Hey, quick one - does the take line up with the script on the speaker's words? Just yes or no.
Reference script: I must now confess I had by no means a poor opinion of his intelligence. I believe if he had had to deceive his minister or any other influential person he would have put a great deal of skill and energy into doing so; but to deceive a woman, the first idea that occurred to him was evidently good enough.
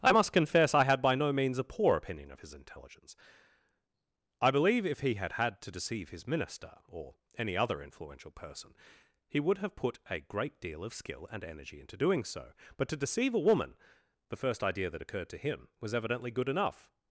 no